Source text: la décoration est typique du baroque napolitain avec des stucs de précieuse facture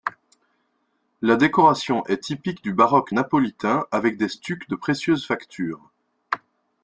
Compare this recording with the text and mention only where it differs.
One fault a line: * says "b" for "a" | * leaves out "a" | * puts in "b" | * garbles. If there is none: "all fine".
all fine